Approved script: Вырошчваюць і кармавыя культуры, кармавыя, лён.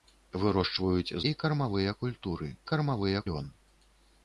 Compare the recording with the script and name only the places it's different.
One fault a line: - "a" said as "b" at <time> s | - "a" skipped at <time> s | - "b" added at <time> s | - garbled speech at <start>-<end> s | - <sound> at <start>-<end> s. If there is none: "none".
none